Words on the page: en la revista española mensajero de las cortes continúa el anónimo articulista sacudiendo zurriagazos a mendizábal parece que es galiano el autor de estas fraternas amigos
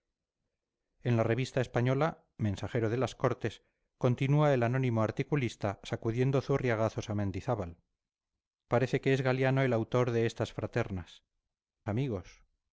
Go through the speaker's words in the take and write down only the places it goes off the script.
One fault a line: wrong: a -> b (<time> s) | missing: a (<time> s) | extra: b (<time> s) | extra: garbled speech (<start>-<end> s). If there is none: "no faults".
no faults